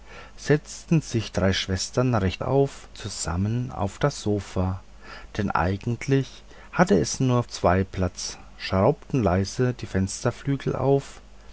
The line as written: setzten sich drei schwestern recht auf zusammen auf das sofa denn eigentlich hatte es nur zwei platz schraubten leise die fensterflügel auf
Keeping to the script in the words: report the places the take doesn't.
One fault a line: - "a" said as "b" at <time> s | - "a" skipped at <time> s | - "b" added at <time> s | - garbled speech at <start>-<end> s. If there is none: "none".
none